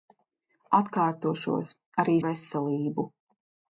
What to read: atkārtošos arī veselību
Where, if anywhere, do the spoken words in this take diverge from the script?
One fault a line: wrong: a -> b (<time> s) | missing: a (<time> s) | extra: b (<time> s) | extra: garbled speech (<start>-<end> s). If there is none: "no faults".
no faults